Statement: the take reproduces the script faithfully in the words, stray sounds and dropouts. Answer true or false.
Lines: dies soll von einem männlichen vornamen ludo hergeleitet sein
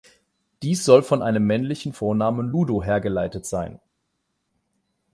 true